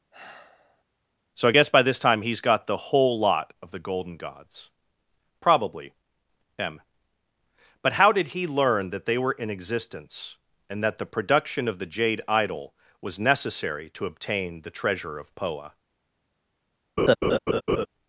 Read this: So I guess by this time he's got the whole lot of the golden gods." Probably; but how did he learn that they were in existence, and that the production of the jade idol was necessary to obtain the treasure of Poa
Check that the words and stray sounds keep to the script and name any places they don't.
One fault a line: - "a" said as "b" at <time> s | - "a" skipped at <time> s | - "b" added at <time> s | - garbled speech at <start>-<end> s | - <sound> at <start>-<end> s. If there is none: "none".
- sigh at 0.1-0.8 s
- "m" added at 6.6 s
- laugh at 17.0-17.9 s